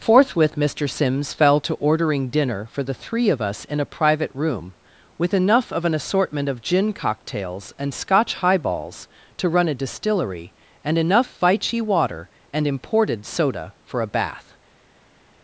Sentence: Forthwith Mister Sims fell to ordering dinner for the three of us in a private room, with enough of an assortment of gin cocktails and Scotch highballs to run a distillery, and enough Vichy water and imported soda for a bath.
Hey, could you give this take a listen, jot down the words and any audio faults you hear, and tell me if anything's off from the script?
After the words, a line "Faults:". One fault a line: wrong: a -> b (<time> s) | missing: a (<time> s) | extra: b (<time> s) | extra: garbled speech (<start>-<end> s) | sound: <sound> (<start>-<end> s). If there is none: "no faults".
Forthwith Mister Sims fell to ordering dinner for the three of us in a private room, with enough of an assortment of gin cocktails and Scotch highballs to run a distillery, and enough Vichy water and imported soda for a bath.
Faults:
no faults